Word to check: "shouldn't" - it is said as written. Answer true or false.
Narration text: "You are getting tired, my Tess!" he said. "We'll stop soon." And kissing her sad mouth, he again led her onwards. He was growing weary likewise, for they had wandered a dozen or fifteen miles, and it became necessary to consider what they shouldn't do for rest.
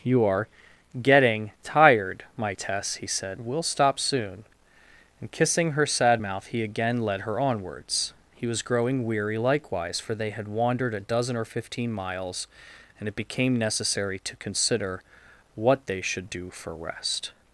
false